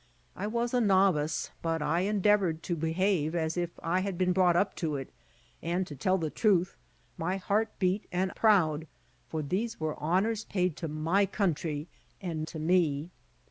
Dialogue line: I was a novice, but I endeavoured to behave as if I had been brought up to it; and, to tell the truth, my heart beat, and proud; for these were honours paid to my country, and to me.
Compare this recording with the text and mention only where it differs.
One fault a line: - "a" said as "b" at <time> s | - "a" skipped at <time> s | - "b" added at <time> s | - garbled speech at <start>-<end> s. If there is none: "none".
none